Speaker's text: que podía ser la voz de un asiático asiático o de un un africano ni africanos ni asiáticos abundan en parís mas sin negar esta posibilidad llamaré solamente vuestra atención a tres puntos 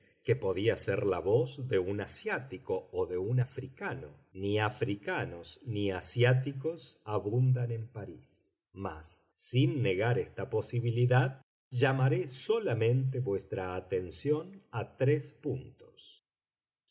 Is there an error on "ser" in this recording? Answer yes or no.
no